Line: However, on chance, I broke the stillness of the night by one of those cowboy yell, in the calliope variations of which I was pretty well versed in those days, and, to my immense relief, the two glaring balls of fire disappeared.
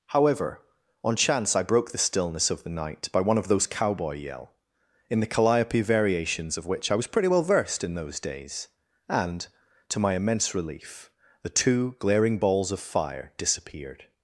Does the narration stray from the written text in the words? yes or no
no